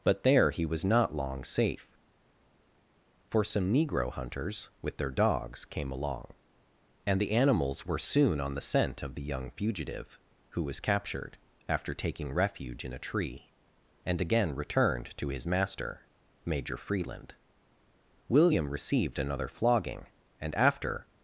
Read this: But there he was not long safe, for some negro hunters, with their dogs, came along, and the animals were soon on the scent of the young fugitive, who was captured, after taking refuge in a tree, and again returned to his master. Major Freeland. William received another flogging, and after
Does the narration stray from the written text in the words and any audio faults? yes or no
no